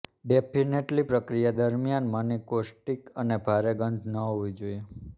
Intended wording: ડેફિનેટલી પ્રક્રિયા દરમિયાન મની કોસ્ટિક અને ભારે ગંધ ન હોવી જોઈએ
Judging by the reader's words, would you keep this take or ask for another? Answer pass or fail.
pass